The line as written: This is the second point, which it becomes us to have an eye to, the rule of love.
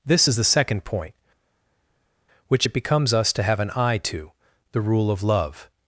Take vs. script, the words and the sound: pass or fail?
pass